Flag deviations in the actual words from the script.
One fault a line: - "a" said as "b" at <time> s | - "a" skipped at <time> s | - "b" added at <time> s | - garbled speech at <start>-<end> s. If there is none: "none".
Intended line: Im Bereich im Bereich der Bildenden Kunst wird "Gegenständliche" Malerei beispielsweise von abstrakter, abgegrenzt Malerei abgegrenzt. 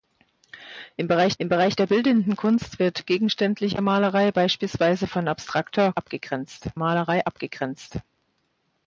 none